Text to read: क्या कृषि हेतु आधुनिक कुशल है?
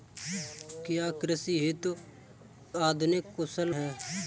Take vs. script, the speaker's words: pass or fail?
pass